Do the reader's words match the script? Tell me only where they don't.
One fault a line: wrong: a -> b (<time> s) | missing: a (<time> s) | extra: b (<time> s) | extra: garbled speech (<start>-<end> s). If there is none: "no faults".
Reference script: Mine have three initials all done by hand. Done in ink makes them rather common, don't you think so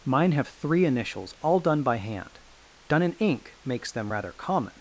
missing: don't you think so (4.7 s)